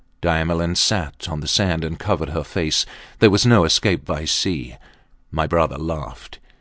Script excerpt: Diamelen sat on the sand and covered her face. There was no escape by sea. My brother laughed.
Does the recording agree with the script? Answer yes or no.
yes